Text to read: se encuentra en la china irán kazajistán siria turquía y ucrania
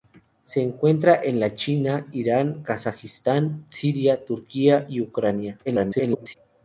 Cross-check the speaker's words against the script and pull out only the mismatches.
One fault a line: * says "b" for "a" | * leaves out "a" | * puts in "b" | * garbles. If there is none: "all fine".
* garbles